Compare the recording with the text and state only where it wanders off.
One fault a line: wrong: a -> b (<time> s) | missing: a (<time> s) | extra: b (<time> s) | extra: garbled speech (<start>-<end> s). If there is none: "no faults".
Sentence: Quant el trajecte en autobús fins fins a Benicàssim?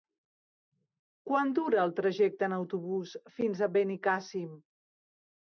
extra: dura (1.6 s)
missing: fins (3.6 s)